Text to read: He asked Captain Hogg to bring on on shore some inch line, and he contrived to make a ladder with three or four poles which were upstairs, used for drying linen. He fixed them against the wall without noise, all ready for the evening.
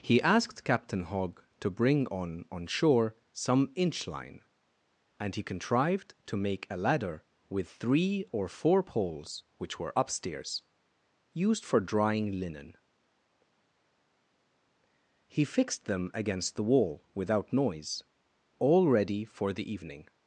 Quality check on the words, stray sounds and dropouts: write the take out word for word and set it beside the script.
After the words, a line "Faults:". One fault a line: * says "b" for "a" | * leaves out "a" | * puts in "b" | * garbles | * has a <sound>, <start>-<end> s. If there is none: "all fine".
He asked Captain Hogg to bring on on shore some inch line, and he contrived to make a ladder with three or four poles which were upstairs, used for drying linen. He fixed them against the wall without noise, all ready for the evening.
Faults:
all fine